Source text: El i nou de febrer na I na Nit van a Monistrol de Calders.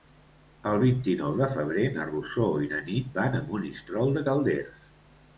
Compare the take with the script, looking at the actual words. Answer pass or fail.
fail